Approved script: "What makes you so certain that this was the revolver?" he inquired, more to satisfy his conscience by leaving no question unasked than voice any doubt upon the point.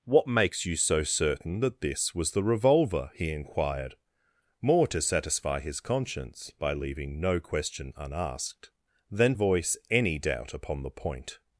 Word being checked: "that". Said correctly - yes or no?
yes